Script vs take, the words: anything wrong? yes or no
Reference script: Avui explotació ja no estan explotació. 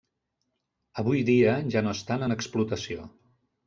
yes